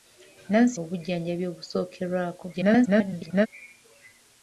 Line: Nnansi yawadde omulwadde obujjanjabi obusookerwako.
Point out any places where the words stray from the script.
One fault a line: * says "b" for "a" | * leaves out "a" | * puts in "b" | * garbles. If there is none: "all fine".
* leaves out "yawadde omulwadde"
* garbles